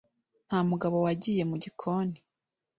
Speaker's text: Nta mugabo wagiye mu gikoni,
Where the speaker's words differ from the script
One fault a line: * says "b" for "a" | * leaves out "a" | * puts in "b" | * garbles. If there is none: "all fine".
all fine